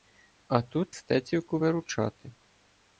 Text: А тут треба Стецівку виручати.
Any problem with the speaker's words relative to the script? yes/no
yes